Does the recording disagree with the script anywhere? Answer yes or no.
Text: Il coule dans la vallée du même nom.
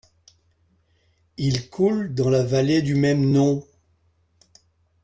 no